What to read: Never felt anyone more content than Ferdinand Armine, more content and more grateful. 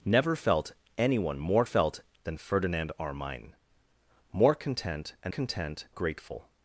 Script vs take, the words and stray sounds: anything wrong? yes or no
yes